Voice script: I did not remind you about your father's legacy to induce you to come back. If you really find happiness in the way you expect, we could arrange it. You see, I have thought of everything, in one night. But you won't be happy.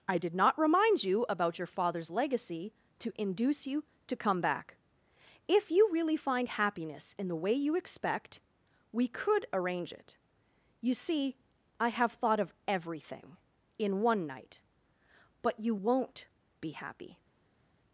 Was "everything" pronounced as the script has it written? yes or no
yes